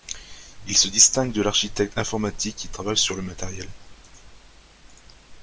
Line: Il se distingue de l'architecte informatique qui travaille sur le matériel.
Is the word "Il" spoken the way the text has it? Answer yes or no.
yes